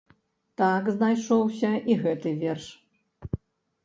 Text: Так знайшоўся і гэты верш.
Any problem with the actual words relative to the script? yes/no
no